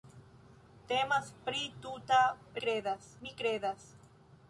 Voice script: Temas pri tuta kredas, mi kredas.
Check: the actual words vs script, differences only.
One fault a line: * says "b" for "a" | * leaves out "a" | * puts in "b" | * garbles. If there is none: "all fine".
all fine